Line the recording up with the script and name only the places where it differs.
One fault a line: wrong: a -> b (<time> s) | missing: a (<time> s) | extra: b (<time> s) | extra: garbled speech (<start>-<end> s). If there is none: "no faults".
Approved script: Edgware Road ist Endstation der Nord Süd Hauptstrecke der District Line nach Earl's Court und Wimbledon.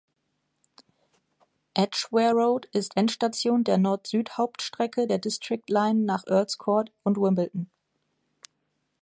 no faults